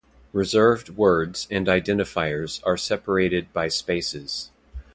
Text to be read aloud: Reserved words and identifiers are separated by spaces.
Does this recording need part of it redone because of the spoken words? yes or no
no